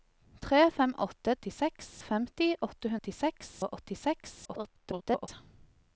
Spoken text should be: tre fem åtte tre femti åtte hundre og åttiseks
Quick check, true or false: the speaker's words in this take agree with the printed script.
false